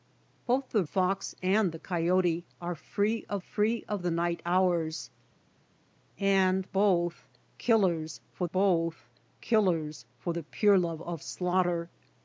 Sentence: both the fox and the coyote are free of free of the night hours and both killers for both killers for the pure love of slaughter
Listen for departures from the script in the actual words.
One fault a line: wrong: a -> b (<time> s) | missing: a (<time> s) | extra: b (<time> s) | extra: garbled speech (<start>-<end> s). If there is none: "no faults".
no faults